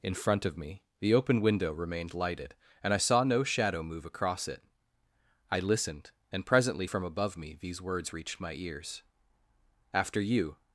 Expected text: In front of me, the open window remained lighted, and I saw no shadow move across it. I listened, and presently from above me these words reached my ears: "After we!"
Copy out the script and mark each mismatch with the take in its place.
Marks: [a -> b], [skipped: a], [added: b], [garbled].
In front of me, the open window remained lighted, and I saw no shadow move across it. I listened, and presently from above me these words reached my ears: "After [we!" -> you]